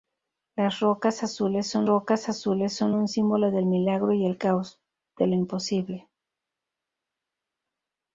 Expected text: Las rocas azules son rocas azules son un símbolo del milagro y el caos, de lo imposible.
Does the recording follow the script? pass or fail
pass